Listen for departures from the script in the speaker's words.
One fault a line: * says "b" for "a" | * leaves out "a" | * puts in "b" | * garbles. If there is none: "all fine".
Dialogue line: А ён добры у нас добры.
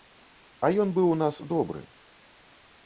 * says "быў" for "добры"